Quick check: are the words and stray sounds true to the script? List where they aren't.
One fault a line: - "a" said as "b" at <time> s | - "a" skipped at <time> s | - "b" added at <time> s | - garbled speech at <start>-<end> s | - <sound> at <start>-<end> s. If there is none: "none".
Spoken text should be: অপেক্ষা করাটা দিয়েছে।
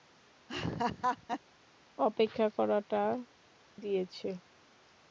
- laugh at 0.5-1.4 s